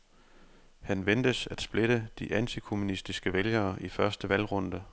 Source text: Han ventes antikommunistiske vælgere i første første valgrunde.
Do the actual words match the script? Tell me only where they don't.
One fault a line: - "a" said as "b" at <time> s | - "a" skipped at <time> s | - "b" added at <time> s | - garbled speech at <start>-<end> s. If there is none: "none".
- "at splitte de" added at 1.5 s
- "første" skipped at 4.3 s